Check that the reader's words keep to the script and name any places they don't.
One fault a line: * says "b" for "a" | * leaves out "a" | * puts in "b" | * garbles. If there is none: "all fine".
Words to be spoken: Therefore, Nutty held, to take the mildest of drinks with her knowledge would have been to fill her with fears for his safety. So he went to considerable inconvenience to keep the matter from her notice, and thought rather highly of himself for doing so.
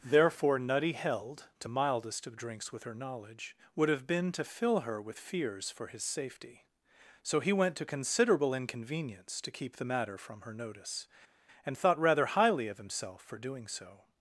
* leaves out "take the"